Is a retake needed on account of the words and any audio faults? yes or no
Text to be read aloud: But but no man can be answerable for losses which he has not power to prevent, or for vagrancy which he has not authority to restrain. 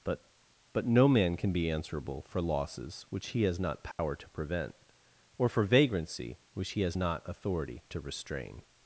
yes